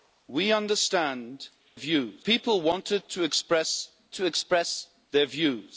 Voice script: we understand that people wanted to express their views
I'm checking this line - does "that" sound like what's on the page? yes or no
no